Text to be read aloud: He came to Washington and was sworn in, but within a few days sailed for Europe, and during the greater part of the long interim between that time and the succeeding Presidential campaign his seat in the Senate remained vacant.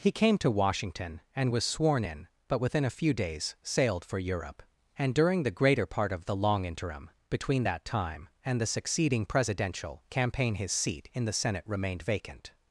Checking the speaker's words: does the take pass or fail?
pass